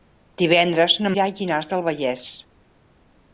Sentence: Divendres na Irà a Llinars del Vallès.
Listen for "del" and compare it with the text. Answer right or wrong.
right